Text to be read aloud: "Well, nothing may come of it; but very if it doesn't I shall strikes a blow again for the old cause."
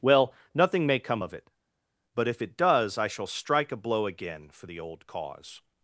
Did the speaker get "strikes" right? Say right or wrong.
wrong